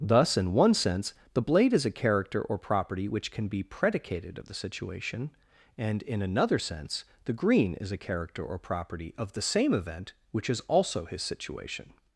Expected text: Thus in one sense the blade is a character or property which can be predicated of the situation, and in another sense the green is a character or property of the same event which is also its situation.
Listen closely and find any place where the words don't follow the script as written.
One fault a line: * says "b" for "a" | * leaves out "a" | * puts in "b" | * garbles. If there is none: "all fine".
* says "his" for "its"